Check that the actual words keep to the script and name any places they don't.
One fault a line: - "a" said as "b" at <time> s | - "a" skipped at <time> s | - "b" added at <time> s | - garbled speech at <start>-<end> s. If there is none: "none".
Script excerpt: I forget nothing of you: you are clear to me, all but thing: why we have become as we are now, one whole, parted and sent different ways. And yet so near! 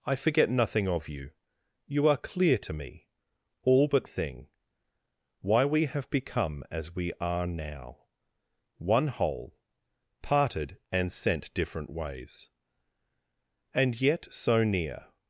none